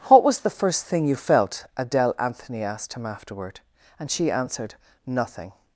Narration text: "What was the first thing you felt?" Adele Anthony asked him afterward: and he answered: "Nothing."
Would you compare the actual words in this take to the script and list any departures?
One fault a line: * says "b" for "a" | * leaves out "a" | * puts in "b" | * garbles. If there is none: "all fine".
* says "she" for "he"